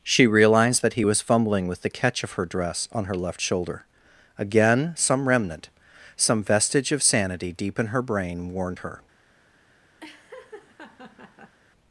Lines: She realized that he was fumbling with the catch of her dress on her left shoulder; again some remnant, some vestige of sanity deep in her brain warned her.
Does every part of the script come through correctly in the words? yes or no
yes